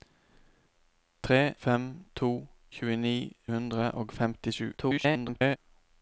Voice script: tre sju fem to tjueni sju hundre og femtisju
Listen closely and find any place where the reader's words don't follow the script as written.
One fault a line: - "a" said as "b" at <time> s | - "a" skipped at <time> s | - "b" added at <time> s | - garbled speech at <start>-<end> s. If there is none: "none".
- "sju" skipped at 1.5 s
- "sju" skipped at 3.1 s
- garbled speech at 4.8-5.6 s